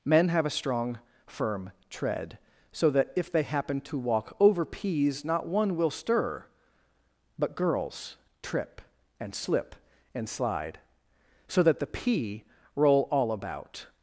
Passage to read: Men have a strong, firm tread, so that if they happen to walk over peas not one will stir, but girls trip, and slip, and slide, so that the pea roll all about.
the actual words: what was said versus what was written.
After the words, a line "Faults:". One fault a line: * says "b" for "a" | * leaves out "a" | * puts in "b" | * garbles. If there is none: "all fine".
Men have a strong, firm tread, so that if they happen to walk over peas not one will stir, but girls trip, and slip, and slide, so that the pea roll all about.
Faults:
all fine